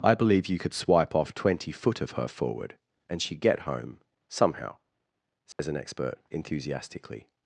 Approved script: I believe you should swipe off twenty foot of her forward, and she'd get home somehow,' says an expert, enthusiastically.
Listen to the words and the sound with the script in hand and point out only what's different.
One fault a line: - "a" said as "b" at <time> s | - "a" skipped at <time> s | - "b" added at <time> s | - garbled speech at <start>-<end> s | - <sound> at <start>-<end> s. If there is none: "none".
- "should" said as "could" at 0.6 s
- dropout at 5.5-5.6 s